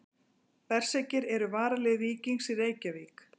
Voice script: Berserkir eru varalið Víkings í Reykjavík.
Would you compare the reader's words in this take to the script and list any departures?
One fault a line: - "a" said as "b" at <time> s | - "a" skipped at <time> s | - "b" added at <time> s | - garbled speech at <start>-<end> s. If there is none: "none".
none